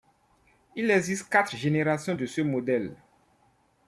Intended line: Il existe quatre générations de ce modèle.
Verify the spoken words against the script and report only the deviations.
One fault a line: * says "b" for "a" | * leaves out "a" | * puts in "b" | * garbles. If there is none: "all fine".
all fine